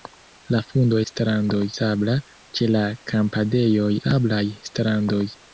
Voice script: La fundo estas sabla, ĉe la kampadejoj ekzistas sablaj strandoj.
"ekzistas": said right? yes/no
no